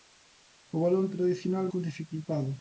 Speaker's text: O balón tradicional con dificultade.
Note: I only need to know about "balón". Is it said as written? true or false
true